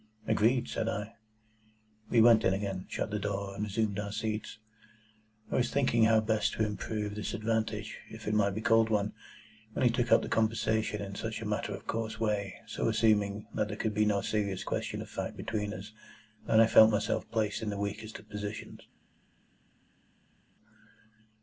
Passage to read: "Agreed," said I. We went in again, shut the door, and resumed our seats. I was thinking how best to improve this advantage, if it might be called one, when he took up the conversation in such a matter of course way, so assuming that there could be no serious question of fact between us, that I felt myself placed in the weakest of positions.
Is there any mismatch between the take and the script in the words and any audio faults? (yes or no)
no